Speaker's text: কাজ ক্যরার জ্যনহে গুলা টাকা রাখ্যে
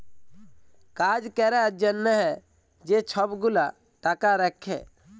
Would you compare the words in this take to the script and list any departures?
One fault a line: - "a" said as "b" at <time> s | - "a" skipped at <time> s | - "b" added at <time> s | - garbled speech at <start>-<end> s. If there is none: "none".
- "যে ছব" added at 2.9 s